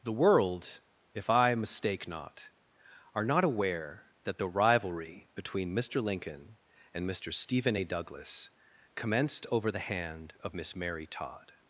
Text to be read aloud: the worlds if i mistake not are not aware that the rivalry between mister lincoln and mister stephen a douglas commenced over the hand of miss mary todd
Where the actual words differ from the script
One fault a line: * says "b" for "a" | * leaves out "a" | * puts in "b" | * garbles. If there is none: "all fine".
* says "world" for "worlds"